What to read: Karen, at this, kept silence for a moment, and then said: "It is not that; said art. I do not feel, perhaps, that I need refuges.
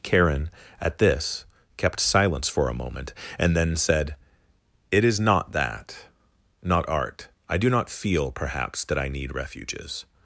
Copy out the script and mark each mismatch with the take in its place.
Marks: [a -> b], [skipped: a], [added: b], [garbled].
Karen, at this, kept silence for a moment, and then said: "It is not that; [said -> not] art. I do not feel, perhaps, that I need refuges.